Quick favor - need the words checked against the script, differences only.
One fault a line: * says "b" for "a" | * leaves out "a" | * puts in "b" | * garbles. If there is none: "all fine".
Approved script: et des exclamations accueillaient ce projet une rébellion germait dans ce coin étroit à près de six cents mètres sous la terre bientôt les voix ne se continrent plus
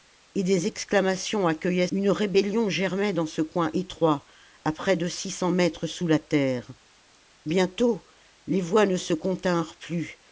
* leaves out "ce projet"